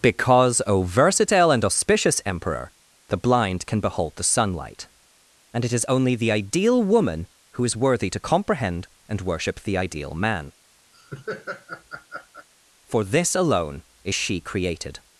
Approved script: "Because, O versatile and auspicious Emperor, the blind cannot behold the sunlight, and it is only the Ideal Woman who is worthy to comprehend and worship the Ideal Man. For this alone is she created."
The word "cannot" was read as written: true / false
false